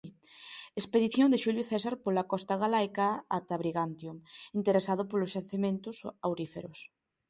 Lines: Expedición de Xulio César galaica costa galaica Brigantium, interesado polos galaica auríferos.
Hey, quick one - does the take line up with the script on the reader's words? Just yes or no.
no